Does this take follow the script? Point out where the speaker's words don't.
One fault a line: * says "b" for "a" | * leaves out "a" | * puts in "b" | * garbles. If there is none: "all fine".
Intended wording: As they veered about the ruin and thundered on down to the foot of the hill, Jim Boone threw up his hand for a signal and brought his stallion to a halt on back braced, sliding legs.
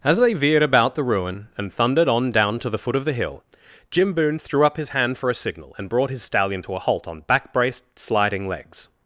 all fine